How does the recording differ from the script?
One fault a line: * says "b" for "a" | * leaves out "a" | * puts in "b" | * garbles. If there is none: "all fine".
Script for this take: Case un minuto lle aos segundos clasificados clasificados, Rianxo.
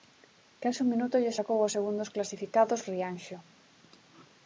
* puts in "sacou"
* leaves out "clasificados"